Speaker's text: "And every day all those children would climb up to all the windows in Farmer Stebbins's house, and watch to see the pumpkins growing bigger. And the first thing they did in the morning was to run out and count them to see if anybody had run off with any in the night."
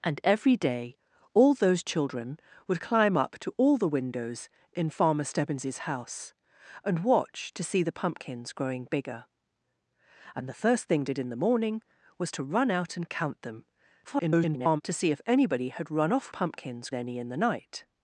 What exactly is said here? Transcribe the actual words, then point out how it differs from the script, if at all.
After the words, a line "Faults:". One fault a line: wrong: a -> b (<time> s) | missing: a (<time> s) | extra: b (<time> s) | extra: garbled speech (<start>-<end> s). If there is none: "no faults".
"And every day all those children would climb up to all the windows in Farmer Stebbins's house, and watch to see the pumpkins growing bigger. And the first thing did in the morning was to run out and count them [garbled] to see if anybody had run off pumpkins any in the night."
Faults:
missing: they (11.0 s)
extra: garbled speech (14.0-14.8 s)
wrong: with -> pumpkins (16.3 s)